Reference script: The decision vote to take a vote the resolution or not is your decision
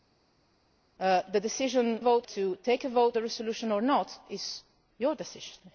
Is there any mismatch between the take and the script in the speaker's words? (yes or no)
no